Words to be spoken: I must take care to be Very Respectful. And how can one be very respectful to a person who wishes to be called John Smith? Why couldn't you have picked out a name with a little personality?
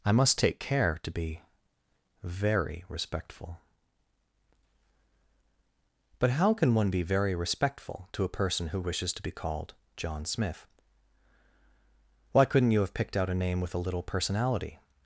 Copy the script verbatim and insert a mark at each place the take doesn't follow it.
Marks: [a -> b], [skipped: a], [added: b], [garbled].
I must take care to be Very Respectful. [And -> But] how can one be very respectful to a person who wishes to be called John Smith? Why couldn't you have picked out a name with a little personality?